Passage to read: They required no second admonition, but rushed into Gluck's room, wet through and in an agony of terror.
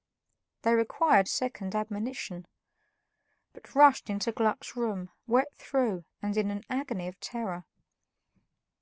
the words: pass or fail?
fail